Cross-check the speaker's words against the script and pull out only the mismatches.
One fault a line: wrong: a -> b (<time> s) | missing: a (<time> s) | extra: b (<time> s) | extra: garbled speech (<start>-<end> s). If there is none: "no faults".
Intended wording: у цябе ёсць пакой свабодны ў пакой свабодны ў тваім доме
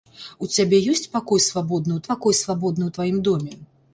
no faults